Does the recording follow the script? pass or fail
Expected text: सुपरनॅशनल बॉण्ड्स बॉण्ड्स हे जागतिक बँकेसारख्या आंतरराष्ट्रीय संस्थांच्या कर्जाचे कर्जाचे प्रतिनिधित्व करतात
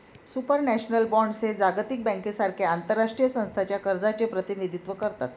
fail